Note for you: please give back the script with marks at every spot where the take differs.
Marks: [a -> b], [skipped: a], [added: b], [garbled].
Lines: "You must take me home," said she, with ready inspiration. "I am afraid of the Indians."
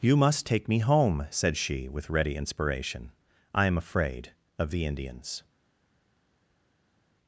"You must take me home," said she, with ready inspiration. "I am afraid of the Indians."